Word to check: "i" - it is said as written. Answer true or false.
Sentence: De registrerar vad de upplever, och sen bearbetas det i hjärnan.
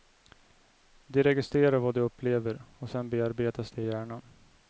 true